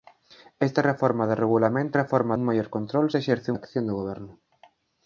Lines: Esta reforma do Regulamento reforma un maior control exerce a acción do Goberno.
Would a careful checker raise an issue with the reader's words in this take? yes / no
no